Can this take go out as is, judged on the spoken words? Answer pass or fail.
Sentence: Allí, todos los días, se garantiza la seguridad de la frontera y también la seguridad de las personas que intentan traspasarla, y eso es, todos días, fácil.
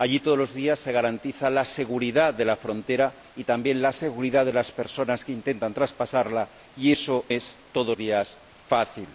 pass